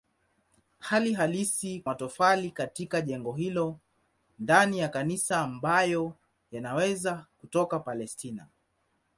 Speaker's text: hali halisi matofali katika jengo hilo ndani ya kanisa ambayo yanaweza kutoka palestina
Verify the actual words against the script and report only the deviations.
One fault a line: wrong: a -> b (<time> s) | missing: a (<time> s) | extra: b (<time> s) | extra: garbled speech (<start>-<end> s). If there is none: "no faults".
no faults